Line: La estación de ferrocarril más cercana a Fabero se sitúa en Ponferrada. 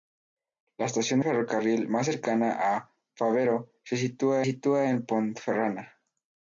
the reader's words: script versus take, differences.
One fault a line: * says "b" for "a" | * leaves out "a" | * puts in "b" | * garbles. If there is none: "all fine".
* leaves out "de"
* puts in "sitúa"